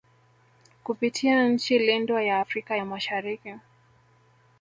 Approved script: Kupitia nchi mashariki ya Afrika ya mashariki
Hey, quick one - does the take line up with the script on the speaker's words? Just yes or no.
no